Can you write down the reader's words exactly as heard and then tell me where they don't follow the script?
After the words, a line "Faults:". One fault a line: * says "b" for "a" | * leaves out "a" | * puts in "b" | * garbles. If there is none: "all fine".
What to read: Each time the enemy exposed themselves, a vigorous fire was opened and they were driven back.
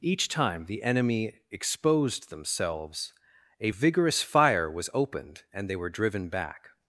Each time the enemy exposed themselves, a vigorous fire was opened and they were driven back.
Faults:
all fine